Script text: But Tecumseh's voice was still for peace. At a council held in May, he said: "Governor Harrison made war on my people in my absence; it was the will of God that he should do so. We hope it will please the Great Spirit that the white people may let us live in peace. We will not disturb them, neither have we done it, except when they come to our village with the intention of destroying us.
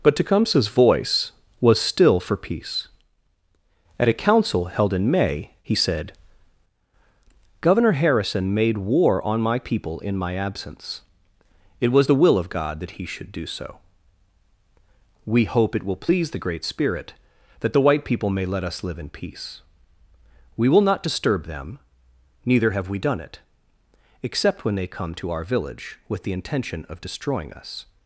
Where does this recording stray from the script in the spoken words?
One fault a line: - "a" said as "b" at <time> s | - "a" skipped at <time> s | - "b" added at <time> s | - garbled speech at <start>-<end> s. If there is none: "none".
none